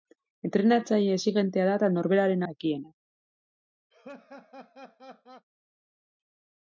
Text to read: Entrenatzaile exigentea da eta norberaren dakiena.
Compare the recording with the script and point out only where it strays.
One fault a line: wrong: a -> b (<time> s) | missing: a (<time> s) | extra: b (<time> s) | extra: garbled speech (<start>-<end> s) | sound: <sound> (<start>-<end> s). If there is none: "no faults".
sound: laugh (3.9-5.5 s)